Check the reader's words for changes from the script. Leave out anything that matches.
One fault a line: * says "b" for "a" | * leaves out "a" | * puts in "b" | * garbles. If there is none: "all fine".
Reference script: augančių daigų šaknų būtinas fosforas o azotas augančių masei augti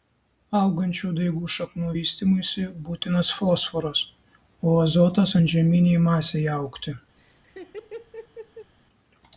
* puts in "vystymuisi"
* says "antžeminei" for "augančių"